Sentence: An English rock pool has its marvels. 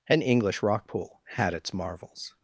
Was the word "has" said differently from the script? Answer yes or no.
yes